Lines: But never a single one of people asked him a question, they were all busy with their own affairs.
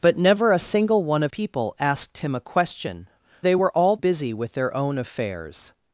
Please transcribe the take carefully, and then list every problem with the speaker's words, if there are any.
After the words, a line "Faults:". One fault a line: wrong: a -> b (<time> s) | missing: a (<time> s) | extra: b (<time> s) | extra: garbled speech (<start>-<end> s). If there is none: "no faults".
But never a single one of people asked him a question, they were all busy with their own affairs.
Faults:
no faults